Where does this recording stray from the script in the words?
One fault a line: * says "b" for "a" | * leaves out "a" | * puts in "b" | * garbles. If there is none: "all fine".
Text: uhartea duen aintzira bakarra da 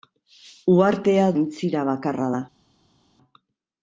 * leaves out "duen"